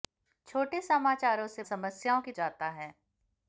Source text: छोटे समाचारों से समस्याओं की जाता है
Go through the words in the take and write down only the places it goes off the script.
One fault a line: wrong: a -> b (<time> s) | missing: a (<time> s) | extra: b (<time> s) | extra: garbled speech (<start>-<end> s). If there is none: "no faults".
no faults